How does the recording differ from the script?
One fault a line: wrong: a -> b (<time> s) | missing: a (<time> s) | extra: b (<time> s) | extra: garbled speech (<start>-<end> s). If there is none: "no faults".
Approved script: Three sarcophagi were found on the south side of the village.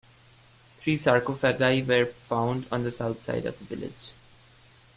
no faults